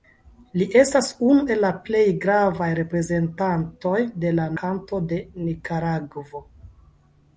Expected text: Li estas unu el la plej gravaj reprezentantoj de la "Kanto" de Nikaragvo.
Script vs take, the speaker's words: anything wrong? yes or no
no